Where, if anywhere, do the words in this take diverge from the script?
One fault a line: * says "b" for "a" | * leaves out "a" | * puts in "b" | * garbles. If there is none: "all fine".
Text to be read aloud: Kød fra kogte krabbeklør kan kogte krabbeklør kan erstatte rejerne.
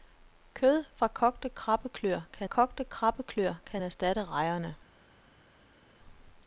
all fine